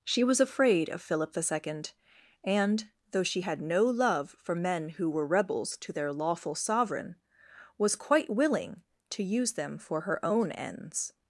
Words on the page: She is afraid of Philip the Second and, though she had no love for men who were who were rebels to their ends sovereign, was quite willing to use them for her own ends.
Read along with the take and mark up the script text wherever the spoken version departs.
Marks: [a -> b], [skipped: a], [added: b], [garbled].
She [is -> was] afraid of Philip the Second and, though she had no love for men who were [skipped: who were] rebels to their [ends -> lawful] sovereign, was quite willing to use them for her own ends.